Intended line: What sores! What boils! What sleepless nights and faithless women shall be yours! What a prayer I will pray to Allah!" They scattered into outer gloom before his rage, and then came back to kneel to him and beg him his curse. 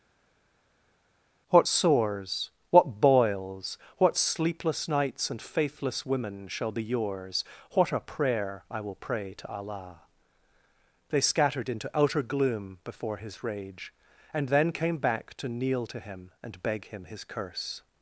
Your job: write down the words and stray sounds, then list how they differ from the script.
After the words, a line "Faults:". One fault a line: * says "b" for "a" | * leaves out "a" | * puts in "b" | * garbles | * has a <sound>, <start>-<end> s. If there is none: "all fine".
What sores! What boils! What sleepless nights and faithless women shall be yours! What a prayer I will pray to Allah!" They scattered into outer gloom before his rage, and then came back to kneel to him and beg him his curse.
Faults:
all fine